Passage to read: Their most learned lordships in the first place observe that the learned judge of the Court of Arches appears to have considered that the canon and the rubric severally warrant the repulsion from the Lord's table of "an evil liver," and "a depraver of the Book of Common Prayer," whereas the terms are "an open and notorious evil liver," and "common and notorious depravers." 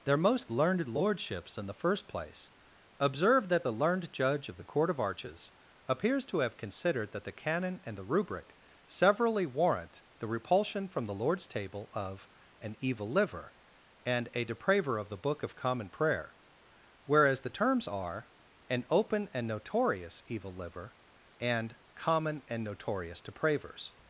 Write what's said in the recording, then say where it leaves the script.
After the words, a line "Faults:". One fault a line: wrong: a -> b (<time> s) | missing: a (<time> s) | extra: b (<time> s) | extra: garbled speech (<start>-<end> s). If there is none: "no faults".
Their most learned lordships in the first place observe that the learned judge of the Court of Arches appears to have considered that the canon and the rubric severally warrant the repulsion from the Lord's table of "an evil liver," and "a depraver of the Book of Common Prayer," whereas the terms are "an open and notorious evil liver," and "common and notorious depravers."
Faults:
no faults